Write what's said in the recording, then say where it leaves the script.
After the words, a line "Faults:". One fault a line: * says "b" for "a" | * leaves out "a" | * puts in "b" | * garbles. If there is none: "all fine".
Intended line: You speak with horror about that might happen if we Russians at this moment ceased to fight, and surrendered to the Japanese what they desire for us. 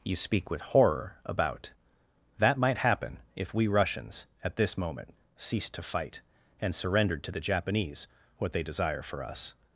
You speak with horror about that might happen if we Russians at this moment ceased to fight, and surrendered to the Japanese what they desire for us.
Faults:
all fine